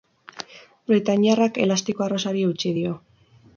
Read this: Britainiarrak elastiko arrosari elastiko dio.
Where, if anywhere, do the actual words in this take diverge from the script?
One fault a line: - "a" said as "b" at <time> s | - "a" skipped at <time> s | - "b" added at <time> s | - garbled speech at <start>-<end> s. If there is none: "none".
- "elastiko" said as "eutsi" at 2.5 s